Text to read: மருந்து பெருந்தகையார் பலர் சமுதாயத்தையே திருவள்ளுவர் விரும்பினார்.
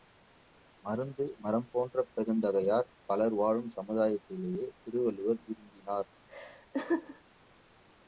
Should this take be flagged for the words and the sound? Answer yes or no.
yes